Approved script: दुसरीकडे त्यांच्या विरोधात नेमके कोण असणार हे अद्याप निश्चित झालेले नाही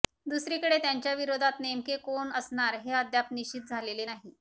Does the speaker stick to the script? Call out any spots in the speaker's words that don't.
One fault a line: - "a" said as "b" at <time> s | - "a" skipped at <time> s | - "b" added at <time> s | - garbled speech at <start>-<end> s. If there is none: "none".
none